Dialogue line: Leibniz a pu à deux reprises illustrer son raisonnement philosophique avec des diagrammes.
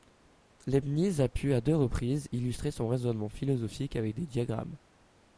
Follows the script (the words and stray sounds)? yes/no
yes